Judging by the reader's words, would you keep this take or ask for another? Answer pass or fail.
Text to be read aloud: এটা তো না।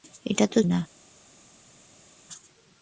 pass